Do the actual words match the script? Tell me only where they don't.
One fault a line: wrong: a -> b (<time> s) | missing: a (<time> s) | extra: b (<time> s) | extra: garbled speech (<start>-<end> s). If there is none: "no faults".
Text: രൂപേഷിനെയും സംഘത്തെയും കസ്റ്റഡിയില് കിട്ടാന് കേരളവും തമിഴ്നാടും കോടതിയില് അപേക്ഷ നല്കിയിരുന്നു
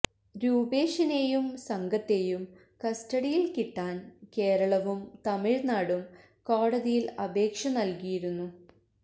no faults